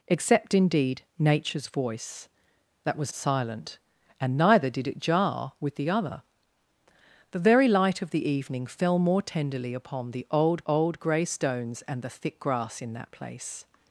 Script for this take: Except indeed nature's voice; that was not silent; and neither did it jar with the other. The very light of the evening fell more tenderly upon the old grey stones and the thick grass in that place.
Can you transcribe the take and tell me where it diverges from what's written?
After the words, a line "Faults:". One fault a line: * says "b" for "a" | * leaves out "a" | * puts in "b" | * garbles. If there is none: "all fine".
Except indeed nature's voice; that was silent; and neither did it jar with the other. The very light of the evening fell more tenderly upon the old old grey stones and the thick grass in that place.
Faults:
* leaves out "not"
* puts in "old"